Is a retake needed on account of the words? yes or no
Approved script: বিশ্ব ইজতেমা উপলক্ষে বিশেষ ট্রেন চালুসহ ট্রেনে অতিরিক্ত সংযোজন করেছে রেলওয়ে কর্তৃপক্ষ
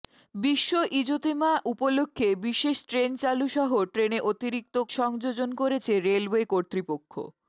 no